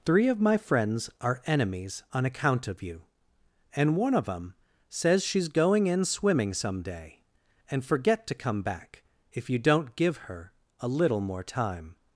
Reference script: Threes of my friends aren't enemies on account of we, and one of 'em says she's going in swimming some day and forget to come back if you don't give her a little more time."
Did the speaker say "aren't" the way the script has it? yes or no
no